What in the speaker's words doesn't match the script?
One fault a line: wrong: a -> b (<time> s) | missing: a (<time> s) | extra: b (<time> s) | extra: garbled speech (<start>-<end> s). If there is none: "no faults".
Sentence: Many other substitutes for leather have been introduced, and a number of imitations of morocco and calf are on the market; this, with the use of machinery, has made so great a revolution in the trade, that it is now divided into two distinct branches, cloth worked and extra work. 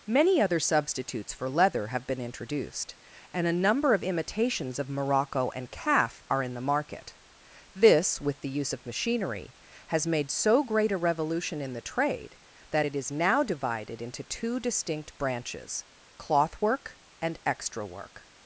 wrong: on -> in (6.4 s)
wrong: worked -> work (16.6 s)